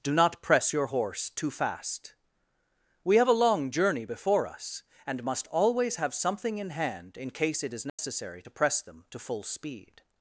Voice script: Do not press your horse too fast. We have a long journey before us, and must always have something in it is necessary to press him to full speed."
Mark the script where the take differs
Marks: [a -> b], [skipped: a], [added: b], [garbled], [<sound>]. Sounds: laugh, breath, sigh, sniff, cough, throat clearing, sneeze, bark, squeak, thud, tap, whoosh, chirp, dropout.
Do not press your horse too fast. We have a long journey before us, and must always have something in [added: hand in case] it is necessary [dropout] to press [him -> them] to full speed."